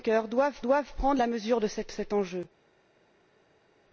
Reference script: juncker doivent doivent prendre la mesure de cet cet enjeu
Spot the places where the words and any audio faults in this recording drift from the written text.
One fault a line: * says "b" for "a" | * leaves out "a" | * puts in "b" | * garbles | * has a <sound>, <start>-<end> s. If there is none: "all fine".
all fine